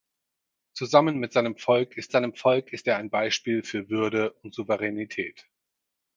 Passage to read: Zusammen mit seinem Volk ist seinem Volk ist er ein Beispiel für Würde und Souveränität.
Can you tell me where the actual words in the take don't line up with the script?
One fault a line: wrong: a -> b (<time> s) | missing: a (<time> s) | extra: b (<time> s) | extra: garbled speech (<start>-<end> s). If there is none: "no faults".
no faults